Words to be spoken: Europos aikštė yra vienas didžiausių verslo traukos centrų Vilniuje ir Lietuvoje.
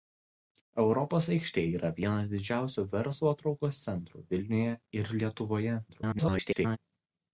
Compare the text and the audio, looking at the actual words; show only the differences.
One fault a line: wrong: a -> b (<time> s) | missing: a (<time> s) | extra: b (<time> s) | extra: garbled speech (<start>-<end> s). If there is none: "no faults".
extra: garbled speech (5.9-6.8 s)